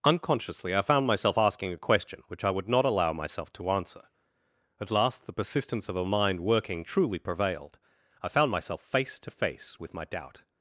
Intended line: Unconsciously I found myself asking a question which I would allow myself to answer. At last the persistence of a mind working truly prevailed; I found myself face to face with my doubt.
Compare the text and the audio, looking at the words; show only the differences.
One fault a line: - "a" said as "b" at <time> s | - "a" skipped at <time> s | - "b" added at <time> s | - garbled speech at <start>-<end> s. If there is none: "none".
- "not" added at 2.7 s